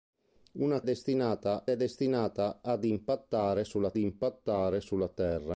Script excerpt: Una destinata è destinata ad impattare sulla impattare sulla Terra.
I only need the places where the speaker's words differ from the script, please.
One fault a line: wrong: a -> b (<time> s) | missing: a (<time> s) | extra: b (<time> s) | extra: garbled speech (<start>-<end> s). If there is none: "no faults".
no faults